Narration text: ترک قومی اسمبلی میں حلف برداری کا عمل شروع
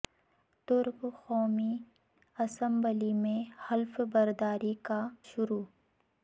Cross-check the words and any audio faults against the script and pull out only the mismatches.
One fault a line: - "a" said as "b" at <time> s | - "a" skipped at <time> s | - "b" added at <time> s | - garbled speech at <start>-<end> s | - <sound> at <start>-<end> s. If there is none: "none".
- "عمل" skipped at 5.1 s